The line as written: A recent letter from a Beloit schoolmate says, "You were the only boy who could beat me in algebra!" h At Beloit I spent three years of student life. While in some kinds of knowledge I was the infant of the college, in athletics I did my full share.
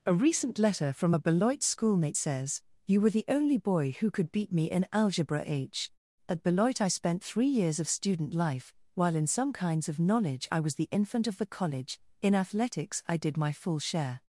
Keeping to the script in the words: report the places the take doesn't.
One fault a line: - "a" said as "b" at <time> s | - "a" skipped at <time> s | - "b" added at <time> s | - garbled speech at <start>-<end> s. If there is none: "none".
none